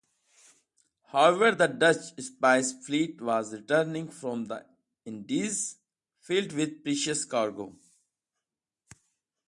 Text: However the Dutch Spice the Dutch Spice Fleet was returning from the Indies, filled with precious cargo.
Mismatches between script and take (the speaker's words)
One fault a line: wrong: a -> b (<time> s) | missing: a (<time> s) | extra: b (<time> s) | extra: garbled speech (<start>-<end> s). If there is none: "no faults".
missing: the Dutch Spice (2.7 s)